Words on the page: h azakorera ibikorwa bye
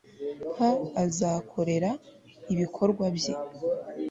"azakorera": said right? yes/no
yes